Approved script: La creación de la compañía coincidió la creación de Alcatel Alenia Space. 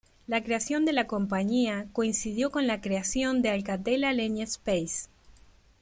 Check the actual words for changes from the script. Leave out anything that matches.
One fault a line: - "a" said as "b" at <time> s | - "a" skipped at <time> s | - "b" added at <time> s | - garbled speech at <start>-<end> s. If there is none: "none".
- "con" added at 2.5 s